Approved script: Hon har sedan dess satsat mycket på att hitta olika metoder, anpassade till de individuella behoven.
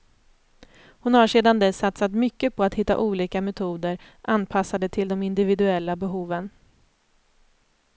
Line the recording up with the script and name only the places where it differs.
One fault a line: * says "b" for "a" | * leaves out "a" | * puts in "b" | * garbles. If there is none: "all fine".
all fine